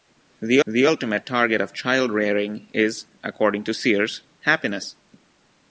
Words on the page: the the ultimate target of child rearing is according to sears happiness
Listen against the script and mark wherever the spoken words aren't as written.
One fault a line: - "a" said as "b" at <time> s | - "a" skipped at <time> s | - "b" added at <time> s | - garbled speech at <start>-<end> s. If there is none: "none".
none